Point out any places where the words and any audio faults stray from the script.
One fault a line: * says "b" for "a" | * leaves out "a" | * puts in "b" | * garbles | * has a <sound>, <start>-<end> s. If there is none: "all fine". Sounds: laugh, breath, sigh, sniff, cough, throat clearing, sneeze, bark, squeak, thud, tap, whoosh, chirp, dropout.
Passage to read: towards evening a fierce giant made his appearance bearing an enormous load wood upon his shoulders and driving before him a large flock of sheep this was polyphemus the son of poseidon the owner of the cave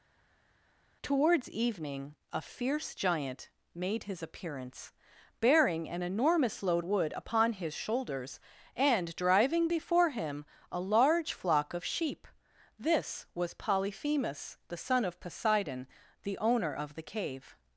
all fine